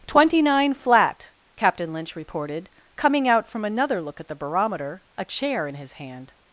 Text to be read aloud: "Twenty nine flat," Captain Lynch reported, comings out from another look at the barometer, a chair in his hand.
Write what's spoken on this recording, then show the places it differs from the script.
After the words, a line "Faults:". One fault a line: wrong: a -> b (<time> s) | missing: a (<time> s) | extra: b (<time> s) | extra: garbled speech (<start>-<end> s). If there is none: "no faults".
"Twenty nine flat," Captain Lynch reported, coming out from another look at the barometer, a chair in his hand.
Faults:
wrong: comings -> coming (3.0 s)